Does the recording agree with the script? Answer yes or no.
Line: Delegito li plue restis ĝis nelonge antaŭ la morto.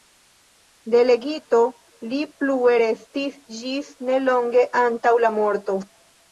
yes